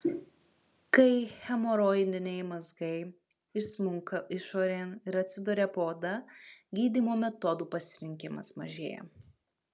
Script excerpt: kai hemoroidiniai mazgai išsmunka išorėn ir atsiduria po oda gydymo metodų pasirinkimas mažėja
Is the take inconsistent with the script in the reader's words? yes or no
no